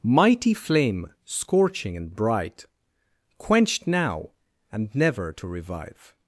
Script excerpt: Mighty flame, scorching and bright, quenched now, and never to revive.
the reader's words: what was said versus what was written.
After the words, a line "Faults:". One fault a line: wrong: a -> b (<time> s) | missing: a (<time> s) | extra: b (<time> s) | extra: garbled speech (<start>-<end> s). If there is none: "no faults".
Mighty flame, scorching and bright, quenched now, and never to revive.
Faults:
no faults